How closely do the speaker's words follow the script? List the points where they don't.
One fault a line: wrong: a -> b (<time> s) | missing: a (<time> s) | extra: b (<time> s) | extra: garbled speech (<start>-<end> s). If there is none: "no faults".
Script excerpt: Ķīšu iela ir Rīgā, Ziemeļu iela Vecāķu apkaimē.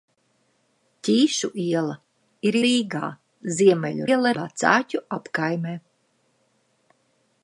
no faults